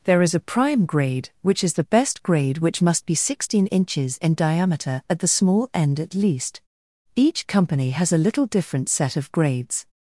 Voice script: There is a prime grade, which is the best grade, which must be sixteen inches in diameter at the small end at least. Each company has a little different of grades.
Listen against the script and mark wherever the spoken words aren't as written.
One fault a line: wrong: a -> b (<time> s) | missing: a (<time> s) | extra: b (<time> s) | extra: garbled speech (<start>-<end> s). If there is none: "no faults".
extra: set (8.9 s)